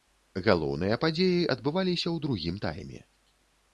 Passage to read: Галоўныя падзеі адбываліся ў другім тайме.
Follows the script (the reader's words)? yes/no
yes